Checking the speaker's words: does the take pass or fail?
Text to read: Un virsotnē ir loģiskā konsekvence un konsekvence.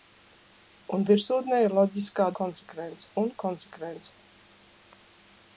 pass